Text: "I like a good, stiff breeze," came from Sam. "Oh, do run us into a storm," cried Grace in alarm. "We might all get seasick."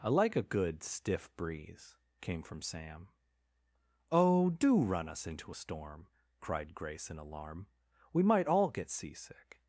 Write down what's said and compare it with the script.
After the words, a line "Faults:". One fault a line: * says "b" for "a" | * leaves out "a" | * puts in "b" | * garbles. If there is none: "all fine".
"I like a good, stiff breeze," came from Sam. "Oh, do run us into a storm," cried Grace in alarm. "We might all get seasick."
Faults:
all fine